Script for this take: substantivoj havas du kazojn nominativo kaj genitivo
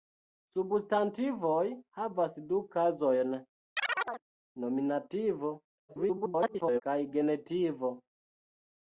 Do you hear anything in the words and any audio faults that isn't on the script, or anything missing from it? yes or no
yes